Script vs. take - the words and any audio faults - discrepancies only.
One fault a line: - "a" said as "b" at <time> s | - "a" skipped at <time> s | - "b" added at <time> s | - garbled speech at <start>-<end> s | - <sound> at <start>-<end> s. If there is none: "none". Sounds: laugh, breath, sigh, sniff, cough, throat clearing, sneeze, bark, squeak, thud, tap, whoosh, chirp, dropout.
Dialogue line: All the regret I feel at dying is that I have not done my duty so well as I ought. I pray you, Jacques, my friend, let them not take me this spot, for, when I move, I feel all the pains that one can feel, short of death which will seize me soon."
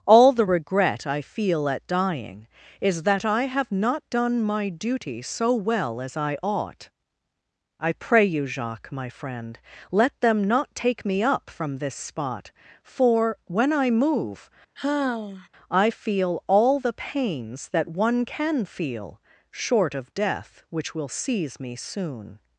- "up from" added at 11.2 s
- sigh at 14.8-15.5 s